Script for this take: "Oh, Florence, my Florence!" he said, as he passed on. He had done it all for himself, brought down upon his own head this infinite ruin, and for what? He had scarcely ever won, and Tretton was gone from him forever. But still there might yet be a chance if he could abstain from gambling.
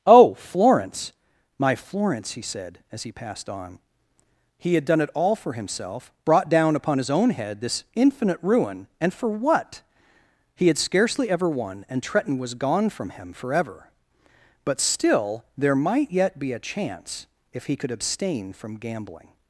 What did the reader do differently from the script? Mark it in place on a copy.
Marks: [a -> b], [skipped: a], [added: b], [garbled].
"Oh, Florence, my Florence!" he said, as he passed on. He had done it all for himself, brought down upon his own head this infinite ruin, and for what? He had scarcely ever won, and Tretton was gone from him forever. But still there might yet be a chance if he could abstain from gambling.